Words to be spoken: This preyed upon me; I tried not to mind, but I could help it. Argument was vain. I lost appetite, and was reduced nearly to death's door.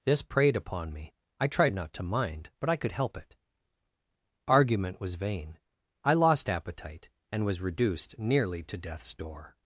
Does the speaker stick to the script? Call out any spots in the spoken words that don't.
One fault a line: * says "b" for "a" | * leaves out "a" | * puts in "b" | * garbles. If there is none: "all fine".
all fine